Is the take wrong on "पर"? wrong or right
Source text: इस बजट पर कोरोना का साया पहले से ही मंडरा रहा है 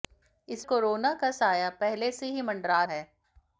wrong